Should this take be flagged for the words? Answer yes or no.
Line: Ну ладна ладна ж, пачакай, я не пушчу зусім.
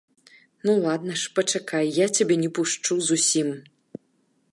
yes